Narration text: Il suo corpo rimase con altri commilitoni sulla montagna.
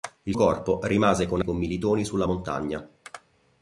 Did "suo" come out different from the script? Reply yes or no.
yes